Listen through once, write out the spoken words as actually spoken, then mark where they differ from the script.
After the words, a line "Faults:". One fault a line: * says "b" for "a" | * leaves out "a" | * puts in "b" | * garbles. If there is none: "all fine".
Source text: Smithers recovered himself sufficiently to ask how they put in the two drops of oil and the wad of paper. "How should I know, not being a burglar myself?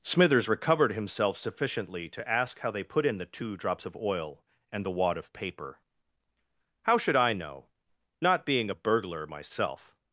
Smithers recovered himself sufficiently to ask how they put in the two drops of oil and the wad of paper. "How should I know, not being a burglar myself?
Faults:
all fine